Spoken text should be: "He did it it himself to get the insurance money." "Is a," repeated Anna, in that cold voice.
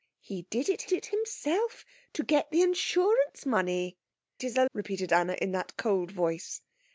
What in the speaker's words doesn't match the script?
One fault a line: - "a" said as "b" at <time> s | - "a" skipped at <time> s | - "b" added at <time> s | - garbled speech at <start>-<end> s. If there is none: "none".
none